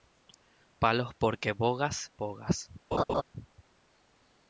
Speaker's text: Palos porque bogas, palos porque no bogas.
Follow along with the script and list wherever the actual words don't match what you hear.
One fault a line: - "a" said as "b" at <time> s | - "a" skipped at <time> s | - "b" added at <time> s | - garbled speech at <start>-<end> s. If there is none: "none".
- "palos porque no" skipped at 2.1 s